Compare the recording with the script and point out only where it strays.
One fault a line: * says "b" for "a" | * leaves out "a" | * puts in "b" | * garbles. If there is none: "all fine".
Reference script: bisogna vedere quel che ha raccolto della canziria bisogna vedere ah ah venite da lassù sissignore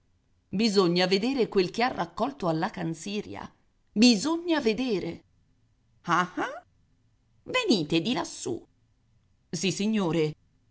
* says "alla" for "della"
* says "di" for "da"